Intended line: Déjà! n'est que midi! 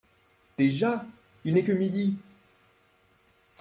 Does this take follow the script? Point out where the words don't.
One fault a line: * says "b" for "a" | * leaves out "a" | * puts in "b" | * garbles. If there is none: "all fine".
* puts in "il"